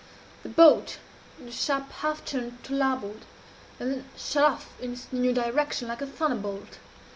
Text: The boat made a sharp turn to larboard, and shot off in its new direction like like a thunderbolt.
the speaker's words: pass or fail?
fail